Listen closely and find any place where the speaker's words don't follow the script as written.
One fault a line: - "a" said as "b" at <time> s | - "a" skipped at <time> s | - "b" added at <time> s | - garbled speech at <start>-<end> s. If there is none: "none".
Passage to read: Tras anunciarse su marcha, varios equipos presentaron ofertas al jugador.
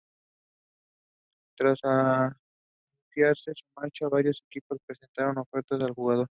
none